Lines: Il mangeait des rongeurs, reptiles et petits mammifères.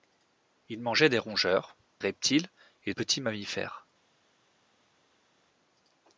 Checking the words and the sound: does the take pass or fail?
pass